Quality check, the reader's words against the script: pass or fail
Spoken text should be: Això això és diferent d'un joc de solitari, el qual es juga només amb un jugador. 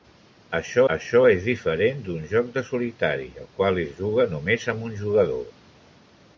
pass